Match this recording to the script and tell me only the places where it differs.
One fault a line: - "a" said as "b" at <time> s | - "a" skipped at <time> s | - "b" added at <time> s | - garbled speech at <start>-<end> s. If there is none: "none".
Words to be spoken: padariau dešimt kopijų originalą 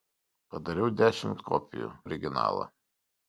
none